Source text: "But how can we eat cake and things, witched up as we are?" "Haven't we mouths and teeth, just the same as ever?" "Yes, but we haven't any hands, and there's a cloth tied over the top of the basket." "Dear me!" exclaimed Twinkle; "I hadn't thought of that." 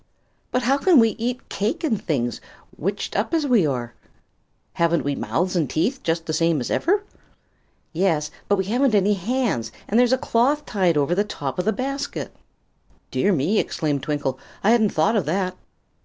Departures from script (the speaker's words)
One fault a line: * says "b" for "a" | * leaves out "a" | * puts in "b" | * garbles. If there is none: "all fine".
all fine